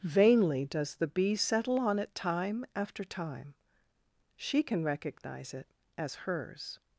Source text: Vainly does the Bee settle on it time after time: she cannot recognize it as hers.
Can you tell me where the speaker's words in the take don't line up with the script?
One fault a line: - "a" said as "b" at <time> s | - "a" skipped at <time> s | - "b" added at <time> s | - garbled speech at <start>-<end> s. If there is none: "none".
- "cannot" said as "can" at 4.6 s